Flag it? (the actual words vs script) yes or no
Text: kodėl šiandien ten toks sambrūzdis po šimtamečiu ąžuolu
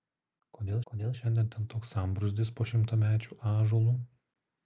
yes